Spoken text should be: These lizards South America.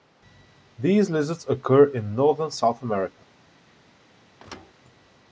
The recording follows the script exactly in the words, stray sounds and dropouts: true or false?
false